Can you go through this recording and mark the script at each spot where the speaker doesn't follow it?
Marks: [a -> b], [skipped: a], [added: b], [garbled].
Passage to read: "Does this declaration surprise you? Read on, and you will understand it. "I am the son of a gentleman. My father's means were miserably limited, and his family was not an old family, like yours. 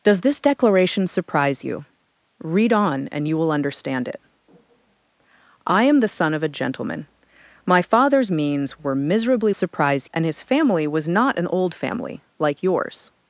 "Does this declaration surprise you? Read on, and you will understand it. "I am the son of a gentleman. My father's means were miserably [limited, -> surprise] and his family was not an old family, like yours.